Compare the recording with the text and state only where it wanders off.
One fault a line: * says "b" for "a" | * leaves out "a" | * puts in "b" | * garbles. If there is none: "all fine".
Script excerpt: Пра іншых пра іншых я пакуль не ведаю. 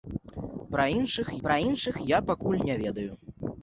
all fine